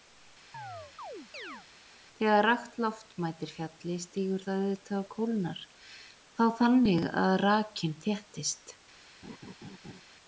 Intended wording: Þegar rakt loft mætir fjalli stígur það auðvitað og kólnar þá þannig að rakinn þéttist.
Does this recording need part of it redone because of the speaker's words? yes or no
no